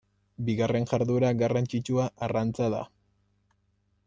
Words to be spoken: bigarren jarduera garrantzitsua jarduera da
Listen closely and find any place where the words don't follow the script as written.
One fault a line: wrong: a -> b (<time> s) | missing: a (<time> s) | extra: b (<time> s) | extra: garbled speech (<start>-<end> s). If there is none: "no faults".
wrong: jarduera -> arrantza (2.3 s)